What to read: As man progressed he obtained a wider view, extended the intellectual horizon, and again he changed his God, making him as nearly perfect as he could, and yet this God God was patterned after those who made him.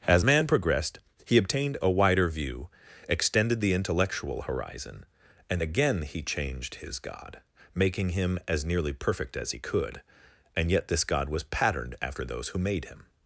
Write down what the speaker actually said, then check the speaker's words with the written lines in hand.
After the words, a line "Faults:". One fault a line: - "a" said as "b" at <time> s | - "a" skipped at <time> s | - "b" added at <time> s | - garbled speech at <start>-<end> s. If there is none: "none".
As man progressed he obtained a wider view, extended the intellectual horizon, and again he changed his God, making him as nearly perfect as he could, and yet this God was patterned after those who made him.
Faults:
- "God" skipped at 11.3 s